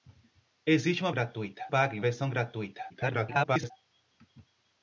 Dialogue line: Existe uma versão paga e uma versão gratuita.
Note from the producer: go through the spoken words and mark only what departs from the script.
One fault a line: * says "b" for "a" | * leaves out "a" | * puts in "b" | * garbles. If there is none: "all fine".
* says "gratuita" for "versão"
* leaves out "uma"
* garbles